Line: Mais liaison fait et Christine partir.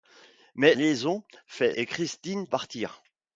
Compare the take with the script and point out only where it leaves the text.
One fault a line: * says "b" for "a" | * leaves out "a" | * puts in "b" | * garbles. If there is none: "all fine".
all fine